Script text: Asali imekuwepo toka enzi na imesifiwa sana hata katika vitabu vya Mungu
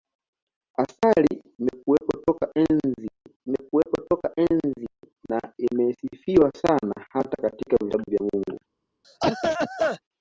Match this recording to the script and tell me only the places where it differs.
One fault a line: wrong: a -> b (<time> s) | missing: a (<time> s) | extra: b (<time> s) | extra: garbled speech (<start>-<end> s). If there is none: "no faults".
extra: imekuwepo toka enzi (3.5 s)